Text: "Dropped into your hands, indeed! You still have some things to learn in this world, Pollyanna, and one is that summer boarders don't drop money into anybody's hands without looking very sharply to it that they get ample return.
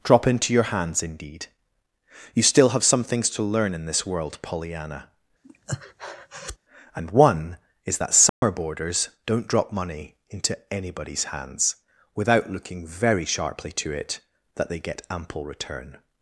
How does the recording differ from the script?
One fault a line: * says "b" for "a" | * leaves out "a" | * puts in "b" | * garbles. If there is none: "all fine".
* says "Drop" for "Dropped"